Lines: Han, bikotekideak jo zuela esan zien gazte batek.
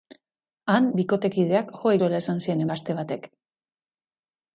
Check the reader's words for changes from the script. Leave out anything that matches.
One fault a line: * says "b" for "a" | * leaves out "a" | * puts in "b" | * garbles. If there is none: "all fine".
all fine